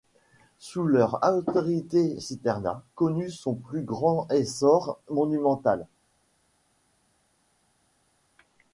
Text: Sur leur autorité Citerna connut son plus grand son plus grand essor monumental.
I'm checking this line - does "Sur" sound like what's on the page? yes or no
no